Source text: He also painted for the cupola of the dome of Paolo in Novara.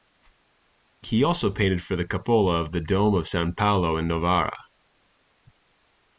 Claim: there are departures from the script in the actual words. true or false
true